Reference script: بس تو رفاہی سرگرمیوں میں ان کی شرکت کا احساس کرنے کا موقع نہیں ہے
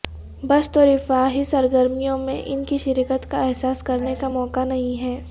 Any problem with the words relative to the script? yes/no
no